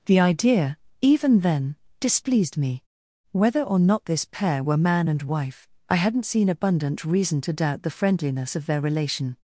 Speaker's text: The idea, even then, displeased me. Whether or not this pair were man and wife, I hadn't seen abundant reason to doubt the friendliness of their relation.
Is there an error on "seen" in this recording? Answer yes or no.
no